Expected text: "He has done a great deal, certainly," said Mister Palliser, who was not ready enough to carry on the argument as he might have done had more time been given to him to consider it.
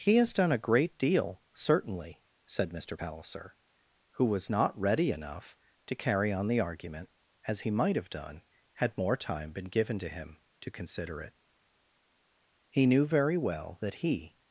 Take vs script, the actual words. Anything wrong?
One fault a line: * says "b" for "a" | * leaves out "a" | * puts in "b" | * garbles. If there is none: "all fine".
* puts in "He knew very well that he"